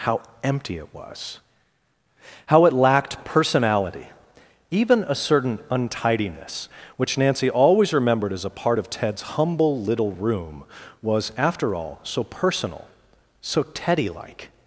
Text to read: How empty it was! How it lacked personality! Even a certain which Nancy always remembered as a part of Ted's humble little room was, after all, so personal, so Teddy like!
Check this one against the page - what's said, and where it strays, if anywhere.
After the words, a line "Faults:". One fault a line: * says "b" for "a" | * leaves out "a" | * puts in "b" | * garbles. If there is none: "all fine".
How empty it was! How it lacked personality! Even a certain untidiness which Nancy always remembered as a part of Ted's humble little room was, after all, so personal, so Teddy like!
Faults:
* puts in "untidiness"